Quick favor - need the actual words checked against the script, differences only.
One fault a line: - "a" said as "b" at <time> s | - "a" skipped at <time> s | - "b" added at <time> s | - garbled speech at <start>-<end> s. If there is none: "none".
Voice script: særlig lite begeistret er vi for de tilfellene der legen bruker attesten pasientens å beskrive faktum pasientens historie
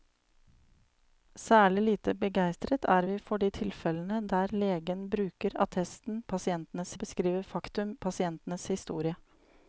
none